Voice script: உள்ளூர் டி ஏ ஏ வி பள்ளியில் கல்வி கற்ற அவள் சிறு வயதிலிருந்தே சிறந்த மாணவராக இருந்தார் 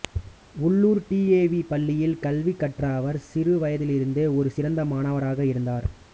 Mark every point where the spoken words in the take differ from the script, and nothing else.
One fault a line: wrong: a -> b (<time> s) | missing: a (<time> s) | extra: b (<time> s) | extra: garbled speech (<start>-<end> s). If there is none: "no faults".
missing: ஏ (1.5 s)
wrong: அவள் -> அவர் (3.0 s)
extra: ஒரு (4.4 s)